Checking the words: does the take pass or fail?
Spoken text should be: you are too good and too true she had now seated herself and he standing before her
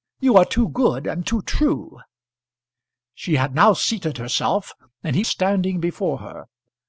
pass